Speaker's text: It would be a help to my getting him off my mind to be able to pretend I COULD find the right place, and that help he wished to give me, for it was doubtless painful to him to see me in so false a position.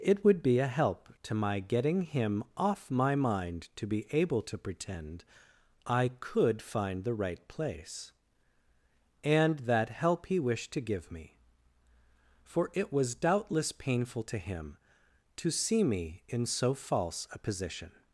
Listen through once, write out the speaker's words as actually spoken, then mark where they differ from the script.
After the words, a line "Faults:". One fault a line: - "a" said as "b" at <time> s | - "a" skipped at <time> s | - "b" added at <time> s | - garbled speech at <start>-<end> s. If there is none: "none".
It would be a help to my getting him off my mind to be able to pretend I COULD find the right place, and that help he wished to give me, for it was doubtless painful to him to see me in so false a position.
Faults:
none